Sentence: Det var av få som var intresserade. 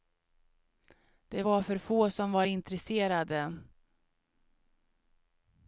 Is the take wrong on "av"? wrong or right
wrong